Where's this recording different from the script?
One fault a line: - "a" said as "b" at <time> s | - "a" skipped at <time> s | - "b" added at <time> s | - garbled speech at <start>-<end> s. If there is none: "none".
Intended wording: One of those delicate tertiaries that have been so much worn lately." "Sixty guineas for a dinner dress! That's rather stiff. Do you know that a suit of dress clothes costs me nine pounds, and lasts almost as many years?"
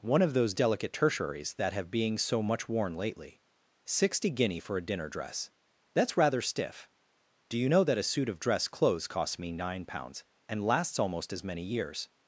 - "been" said as "being" at 1.9 s
- "guineas" said as "guinea" at 4.3 s